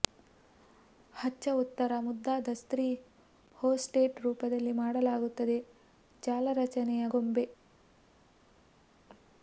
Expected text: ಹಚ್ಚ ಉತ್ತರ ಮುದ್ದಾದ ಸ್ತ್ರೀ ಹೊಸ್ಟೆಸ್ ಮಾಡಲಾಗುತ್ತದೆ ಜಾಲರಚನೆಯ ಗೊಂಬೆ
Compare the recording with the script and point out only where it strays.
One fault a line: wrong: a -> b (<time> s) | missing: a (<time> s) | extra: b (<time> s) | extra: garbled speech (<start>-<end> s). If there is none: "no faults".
extra: ರೂಪದಲ್ಲಿ (4.2 s)